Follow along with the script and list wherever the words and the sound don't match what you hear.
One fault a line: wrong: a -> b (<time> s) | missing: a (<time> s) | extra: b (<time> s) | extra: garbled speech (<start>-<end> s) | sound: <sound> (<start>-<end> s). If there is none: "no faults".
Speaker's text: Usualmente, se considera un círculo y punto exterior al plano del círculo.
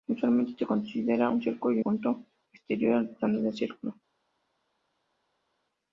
no faults